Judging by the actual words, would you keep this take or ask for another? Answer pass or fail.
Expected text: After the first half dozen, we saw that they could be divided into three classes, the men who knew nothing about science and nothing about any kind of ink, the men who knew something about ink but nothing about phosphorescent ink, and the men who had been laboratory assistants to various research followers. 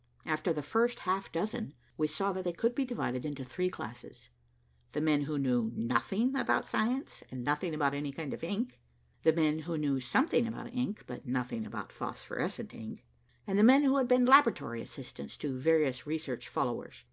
pass